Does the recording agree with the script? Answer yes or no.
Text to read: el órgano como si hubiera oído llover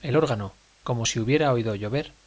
yes